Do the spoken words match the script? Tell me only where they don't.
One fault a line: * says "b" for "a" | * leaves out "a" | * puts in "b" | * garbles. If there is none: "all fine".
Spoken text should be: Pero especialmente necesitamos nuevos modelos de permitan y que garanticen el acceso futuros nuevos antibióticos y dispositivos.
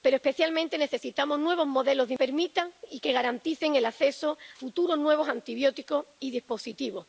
all fine